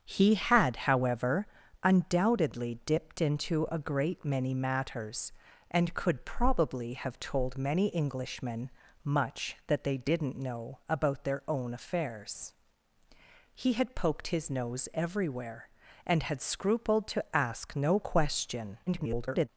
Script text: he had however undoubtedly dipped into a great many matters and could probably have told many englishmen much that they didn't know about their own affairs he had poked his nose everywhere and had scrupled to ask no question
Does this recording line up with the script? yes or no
no